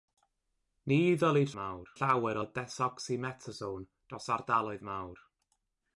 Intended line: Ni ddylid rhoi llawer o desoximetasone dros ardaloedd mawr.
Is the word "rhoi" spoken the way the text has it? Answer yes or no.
no